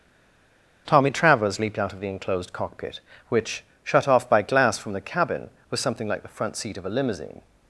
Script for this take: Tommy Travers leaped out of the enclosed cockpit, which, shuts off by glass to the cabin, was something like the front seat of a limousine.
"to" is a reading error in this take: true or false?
true